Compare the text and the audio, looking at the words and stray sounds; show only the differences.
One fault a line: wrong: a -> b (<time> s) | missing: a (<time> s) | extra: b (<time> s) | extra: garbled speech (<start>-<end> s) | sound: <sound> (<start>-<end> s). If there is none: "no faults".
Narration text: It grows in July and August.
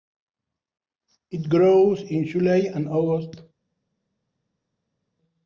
no faults